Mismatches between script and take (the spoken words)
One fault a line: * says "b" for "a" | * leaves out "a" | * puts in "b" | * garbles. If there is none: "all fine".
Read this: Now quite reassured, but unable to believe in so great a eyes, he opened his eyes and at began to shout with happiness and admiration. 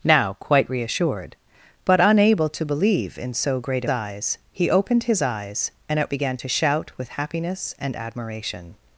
all fine